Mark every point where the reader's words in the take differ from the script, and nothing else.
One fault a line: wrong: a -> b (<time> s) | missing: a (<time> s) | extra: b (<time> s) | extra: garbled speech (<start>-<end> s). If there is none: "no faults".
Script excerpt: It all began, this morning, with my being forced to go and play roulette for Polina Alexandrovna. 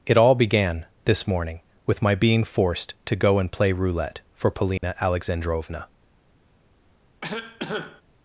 no faults